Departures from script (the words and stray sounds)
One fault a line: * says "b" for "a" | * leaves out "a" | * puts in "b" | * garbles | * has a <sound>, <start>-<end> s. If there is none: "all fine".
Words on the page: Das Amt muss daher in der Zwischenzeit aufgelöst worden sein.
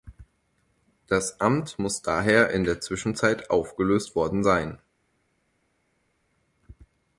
all fine